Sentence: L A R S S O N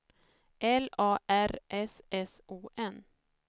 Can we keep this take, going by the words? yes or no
yes